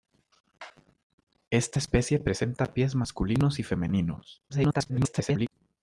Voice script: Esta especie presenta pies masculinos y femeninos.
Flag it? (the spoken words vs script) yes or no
yes